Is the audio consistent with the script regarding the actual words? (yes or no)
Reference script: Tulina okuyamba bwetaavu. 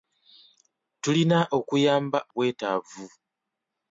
yes